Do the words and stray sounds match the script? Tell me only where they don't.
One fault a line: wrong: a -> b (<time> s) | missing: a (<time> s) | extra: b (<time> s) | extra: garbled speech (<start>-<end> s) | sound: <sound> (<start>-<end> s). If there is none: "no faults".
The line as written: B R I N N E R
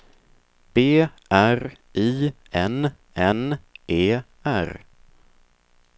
no faults